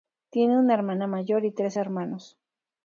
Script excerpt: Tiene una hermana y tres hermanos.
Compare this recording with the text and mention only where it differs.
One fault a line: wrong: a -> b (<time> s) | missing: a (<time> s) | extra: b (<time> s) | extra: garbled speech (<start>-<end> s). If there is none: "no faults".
extra: mayor (1.1 s)